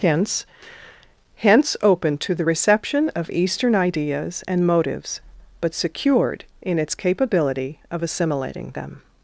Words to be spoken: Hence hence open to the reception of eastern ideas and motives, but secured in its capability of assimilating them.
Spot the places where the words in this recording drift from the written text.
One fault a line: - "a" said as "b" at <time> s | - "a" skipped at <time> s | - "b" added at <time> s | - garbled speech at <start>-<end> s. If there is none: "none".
none